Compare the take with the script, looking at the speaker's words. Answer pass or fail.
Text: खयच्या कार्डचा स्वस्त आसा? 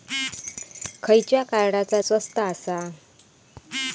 pass